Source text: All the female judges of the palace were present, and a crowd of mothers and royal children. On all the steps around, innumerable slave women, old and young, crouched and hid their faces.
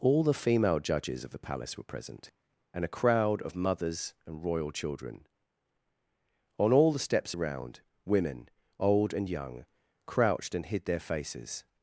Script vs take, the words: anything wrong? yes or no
yes